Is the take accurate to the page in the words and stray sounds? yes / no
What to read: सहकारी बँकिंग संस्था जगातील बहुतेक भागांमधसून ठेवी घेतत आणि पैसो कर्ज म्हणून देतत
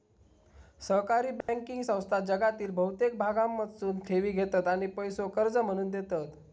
no